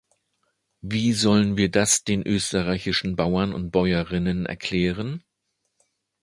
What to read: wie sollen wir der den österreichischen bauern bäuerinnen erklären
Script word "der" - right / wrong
wrong